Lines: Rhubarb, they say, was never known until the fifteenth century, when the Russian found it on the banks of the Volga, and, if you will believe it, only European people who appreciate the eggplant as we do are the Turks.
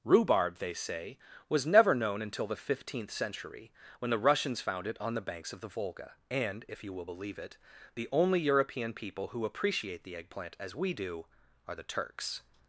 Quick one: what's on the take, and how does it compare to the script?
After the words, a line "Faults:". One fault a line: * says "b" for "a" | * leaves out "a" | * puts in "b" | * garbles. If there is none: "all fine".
Rhubarb, they say, was never known until the fifteenth century, when the Russians found it on the banks of the Volga, and, if you will believe it, the only European people who appreciate the eggplant as we do are the Turks.
Faults:
* says "Russians" for "Russian"
* puts in "the"